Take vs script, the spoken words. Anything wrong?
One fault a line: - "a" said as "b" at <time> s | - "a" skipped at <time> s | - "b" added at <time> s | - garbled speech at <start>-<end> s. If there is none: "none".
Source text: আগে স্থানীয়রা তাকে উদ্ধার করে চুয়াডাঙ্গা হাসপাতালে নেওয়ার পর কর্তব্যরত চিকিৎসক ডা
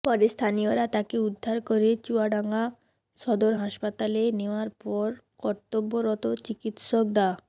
- "আগে" said as "পরে" at 0.0 s
- "সদর" added at 3.2 s